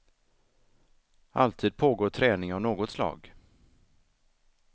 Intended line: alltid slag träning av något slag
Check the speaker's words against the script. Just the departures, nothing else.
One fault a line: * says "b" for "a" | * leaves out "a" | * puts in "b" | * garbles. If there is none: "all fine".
* says "pågår" for "slag"